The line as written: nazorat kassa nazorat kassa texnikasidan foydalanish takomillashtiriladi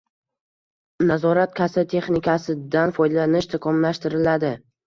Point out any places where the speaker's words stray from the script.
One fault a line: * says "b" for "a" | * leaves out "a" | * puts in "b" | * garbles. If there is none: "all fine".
* leaves out "nazorat kassa"